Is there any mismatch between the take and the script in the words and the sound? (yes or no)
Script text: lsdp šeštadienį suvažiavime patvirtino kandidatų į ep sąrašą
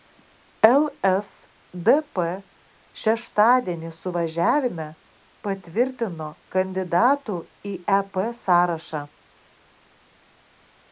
no